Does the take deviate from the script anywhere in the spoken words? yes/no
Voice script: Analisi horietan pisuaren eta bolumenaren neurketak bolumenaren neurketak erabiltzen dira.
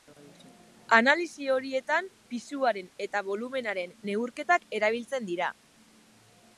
yes